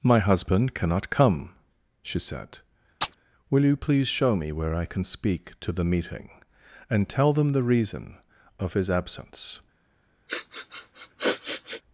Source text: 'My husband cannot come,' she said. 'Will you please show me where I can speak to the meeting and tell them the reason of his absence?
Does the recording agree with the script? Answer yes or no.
yes